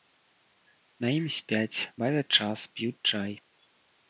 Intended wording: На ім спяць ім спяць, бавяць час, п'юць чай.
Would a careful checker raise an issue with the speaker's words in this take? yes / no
yes